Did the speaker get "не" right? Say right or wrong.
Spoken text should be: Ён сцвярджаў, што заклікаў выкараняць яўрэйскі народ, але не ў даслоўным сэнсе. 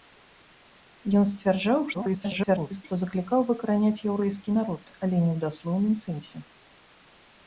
right